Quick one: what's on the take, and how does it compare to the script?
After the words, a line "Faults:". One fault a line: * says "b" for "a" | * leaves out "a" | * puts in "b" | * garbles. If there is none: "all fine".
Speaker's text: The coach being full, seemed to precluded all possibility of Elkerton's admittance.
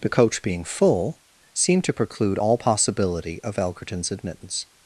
The coach being full, seemed to preclude all possibility of Elkerton's admittance.
Faults:
* says "preclude" for "precluded"